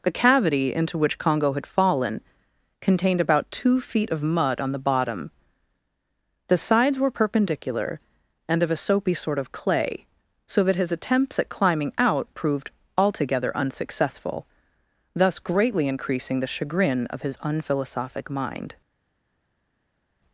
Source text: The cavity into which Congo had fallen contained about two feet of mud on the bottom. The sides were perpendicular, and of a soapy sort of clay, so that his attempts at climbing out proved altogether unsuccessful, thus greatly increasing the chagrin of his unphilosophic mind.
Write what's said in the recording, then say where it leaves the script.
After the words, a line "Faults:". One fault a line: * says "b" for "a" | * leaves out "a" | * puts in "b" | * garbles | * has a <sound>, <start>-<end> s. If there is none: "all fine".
The cavity into which Congo had fallen contained about two feet of mud on the bottom. The sides were perpendicular, and of a soapy sort of clay, so that his attempts at climbing out proved altogether unsuccessful, thus greatly increasing the chagrin of his unphilosophic mind.
Faults:
all fine